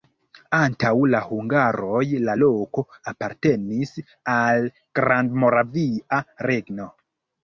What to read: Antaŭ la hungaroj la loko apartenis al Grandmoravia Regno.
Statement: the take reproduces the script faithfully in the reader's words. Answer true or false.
true